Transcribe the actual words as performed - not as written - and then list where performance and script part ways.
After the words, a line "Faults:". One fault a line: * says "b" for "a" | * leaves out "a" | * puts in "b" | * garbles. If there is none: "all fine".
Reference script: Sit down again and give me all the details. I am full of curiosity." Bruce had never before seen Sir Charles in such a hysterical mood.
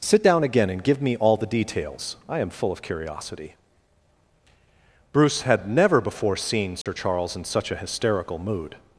Sit down again and give me all the details. I am full of curiosity." Bruce had never before seen Sir Charles in such a hysterical mood.
Faults:
all fine